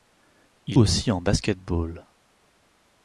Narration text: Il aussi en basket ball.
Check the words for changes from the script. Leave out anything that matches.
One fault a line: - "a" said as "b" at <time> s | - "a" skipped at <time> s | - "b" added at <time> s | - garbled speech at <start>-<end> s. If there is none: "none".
none